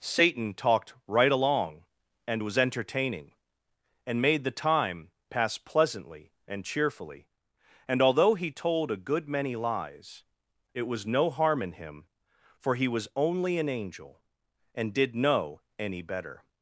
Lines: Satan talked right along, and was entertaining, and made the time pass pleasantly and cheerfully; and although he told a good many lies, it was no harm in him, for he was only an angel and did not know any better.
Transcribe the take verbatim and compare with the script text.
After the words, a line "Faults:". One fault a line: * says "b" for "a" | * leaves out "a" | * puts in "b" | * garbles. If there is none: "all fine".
Satan talked right along, and was entertaining, and made the time pass pleasantly and cheerfully; and although he told a good many lies, it was no harm in him, for he was only an angel and did know any better.
Faults:
* leaves out "not"